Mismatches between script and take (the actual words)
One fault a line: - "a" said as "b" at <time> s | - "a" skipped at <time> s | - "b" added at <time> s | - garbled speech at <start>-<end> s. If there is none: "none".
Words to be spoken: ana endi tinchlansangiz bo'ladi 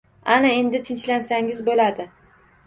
none